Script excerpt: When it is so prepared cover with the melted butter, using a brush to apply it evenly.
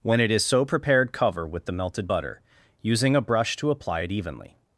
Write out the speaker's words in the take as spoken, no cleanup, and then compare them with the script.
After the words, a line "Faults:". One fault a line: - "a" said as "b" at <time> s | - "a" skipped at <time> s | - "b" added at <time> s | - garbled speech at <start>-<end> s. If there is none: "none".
When it is so prepared cover with the melted butter, using a brush to apply it evenly.
Faults:
none